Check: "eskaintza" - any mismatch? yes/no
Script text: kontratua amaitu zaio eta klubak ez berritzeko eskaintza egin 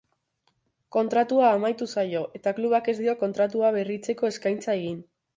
no